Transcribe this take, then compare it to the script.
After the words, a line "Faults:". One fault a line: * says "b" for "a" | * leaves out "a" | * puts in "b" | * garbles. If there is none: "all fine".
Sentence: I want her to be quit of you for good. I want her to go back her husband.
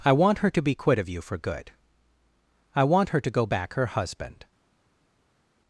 I want her to be quit of you for good. I want her to go back her husband.
Faults:
all fine